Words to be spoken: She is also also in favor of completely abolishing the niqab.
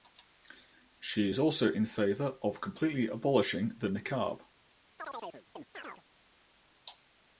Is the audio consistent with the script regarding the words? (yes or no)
no